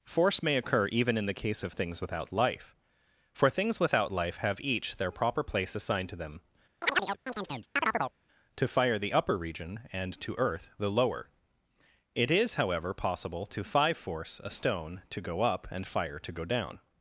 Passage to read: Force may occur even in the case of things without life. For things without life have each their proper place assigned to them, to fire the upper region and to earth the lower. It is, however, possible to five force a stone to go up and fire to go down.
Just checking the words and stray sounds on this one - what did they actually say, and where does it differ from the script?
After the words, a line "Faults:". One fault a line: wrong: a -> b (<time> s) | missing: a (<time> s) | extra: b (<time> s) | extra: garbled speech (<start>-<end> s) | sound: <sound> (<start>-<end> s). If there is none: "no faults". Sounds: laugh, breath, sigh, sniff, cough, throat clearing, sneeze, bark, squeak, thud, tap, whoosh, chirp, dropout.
Force may occur even in the case of things without life. For things without life have each their proper place assigned to them, to fire the upper region and to earth the lower. It is, however, possible to five force a stone to go up and fire to go down.
Faults:
sound: chirp (6.8-8.1 s)